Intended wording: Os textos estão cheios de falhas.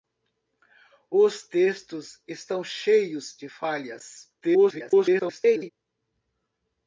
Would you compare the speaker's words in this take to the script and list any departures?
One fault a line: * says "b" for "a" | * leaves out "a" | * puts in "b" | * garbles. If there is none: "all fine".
* garbles